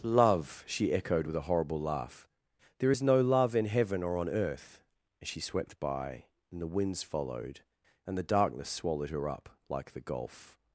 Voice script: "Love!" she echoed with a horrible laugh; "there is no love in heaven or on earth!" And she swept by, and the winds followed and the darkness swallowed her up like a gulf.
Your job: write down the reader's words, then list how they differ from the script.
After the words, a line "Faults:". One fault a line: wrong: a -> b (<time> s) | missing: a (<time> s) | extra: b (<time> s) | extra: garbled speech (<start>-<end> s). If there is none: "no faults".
"Love!" she echoed with a horrible laugh; "there is no love in heaven or on earth!" And she swept by, and the winds followed and the darkness swallowed her up like the gulf.
Faults:
wrong: a -> the (9.9 s)